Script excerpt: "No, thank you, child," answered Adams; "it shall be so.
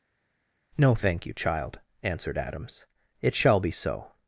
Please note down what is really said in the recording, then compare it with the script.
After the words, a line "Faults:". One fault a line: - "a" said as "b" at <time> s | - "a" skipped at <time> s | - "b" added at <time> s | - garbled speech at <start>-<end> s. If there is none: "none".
"No, thank you, child," answered Adams; "it shall be so.
Faults:
none